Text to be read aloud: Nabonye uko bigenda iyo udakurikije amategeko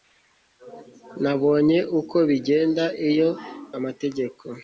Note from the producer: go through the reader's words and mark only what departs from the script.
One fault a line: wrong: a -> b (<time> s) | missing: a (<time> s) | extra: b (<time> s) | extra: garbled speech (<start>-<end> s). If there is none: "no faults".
missing: udakurikije (3.3 s)